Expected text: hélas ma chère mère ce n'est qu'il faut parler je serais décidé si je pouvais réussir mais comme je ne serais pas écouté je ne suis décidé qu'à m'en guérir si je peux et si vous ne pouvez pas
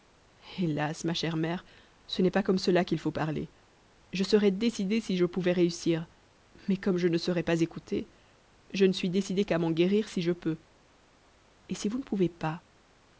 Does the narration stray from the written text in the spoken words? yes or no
yes